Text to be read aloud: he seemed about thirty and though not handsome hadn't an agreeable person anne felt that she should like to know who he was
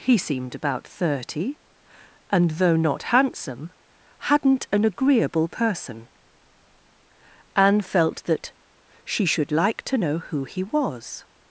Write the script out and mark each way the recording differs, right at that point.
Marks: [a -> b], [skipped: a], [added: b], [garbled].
he seemed about thirty and though not handsome hadn't an agreeable person anne felt that she should like to know who he was